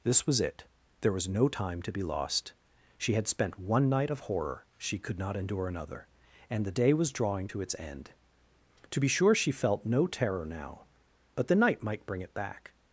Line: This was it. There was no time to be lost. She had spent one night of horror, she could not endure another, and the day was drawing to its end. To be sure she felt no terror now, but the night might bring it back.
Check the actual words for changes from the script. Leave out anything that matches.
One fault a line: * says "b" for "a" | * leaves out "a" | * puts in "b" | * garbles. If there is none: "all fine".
all fine